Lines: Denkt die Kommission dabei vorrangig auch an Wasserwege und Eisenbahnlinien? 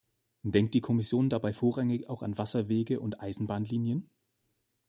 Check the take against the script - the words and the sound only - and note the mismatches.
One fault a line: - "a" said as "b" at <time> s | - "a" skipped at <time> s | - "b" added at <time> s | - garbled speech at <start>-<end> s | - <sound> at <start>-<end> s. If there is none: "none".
none